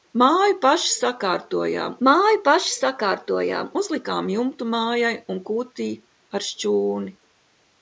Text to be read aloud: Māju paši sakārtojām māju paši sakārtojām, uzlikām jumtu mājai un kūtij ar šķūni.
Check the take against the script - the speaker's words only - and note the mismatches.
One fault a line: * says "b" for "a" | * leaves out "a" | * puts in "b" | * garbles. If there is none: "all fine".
all fine